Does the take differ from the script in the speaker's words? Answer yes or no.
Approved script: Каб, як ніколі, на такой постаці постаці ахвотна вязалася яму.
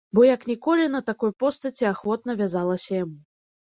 yes